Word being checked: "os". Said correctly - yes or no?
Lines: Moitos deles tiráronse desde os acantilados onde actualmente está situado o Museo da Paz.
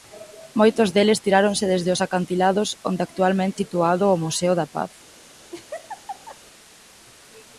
yes